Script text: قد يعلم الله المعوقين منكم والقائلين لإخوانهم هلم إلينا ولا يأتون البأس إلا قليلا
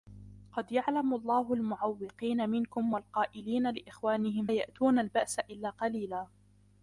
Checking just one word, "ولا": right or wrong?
wrong